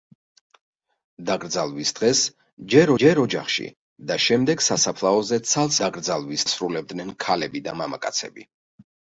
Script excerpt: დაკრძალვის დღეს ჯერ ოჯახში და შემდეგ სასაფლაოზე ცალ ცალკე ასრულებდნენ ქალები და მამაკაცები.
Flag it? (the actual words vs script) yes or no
yes